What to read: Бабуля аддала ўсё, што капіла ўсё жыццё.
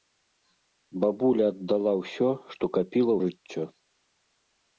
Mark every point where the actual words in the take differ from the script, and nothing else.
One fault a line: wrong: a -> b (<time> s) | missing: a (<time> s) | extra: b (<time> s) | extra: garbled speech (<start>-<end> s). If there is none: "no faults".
missing: ўсё (3.1 s)